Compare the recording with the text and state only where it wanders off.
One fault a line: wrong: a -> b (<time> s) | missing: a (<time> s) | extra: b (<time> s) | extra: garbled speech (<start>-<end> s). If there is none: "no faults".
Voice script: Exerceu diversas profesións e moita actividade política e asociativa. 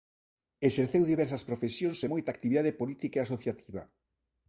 no faults